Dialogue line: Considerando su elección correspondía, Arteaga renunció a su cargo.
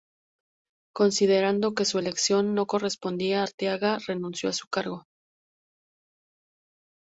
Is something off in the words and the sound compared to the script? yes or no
yes